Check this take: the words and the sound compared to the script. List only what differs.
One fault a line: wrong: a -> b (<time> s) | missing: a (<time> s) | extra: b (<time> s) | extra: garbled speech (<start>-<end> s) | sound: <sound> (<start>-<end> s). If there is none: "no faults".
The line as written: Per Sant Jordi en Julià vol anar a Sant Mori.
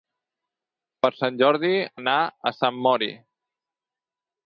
missing: en Julià vol (1.7 s)